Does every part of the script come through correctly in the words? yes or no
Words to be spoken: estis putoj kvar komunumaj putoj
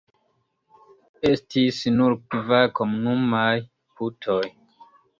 no